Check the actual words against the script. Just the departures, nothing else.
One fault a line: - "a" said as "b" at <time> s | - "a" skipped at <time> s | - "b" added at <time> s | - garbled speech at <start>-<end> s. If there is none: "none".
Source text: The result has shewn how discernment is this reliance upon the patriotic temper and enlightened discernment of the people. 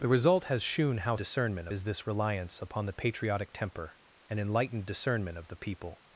none